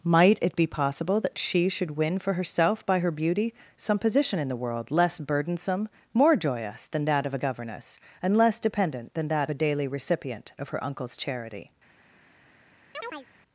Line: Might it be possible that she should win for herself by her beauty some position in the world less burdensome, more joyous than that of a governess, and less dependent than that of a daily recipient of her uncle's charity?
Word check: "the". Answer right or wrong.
right